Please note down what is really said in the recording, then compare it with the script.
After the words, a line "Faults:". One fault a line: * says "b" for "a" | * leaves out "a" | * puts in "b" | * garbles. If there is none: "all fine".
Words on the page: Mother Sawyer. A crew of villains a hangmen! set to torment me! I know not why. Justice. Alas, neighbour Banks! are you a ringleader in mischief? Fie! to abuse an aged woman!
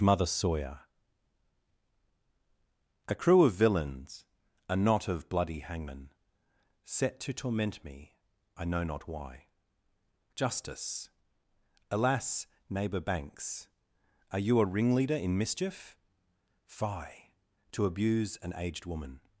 Mother Sawyer. A crew of villains a knot of bloody hangmen! set to torment me! I know not why. Justice. Alas, neighbour Banks! are you a ringleader in mischief? Fie! to abuse an aged woman!
Faults:
* puts in "knot of bloody"